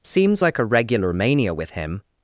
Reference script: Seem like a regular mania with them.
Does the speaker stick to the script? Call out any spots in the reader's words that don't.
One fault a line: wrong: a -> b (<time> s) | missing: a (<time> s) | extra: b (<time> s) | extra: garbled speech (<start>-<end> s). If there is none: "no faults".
wrong: Seem -> Seems (0.0 s)
wrong: them -> him (1.7 s)